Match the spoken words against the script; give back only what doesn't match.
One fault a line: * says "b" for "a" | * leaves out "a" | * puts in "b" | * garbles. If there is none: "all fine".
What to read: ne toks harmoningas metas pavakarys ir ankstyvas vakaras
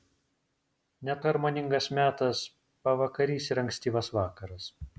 * leaves out "toks"